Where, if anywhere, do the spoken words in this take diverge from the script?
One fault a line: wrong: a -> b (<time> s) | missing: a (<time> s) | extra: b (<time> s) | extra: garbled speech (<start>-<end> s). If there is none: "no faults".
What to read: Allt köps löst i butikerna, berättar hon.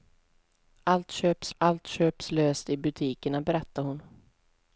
extra: allt köps (1.6 s)